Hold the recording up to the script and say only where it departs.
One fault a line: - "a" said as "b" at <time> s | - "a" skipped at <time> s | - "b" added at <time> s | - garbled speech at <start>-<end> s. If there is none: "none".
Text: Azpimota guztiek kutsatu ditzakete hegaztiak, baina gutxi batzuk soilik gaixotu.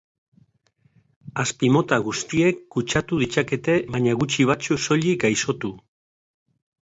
- "hegaztiak" skipped at 3.8 s